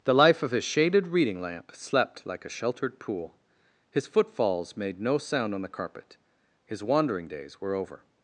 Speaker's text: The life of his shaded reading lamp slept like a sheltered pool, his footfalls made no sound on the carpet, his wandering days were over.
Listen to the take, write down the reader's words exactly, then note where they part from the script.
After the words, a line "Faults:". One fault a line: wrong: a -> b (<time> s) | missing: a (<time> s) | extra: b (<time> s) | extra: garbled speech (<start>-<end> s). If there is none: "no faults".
The life of his shaded reading lamp slept like a sheltered pool, his footfalls made no sound on the carpet, his wandering days were over.
Faults:
no faults